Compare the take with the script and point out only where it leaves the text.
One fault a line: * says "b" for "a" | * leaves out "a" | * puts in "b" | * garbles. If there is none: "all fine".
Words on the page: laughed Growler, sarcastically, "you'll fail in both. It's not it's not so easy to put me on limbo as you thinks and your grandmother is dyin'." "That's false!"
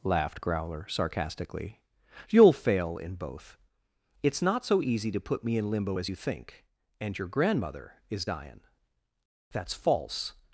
* leaves out "it's not"
* says "in" for "on"
* says "think" for "thinks"